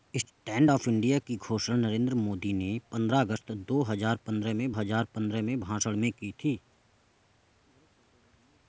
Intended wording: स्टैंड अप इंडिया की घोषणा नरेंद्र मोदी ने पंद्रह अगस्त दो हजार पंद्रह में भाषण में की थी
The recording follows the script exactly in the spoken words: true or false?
false